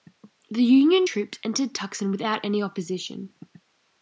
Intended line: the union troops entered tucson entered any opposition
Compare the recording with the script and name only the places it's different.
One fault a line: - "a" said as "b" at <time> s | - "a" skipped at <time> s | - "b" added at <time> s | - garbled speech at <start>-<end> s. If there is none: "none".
- "entered" said as "without" at 2.1 s